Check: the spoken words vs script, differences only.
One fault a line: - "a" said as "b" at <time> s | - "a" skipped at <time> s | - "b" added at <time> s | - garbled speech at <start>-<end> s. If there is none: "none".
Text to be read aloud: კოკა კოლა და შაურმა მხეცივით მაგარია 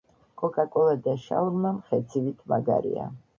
none